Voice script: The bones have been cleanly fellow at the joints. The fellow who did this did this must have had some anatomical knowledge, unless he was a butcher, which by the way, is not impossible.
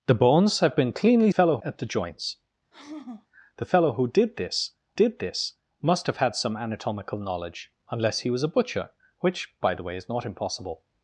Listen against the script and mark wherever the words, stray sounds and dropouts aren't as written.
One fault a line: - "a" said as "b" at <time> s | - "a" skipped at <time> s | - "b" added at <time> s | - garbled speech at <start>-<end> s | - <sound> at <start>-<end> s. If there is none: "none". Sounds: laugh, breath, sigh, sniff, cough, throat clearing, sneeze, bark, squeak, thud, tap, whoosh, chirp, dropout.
- sigh at 2.7-3.3 s